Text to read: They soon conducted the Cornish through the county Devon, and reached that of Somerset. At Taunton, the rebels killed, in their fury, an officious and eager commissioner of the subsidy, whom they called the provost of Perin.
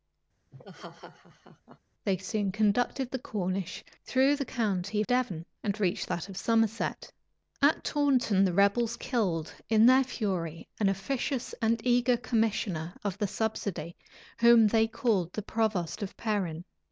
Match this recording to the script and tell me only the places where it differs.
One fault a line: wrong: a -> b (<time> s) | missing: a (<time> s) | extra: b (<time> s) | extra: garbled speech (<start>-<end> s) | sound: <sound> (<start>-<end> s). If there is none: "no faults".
sound: laugh (0.5-1.8 s)